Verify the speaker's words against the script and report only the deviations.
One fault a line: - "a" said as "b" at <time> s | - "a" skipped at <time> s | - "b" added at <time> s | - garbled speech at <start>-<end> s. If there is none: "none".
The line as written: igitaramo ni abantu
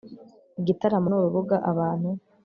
- "urubuga" added at 1.2 s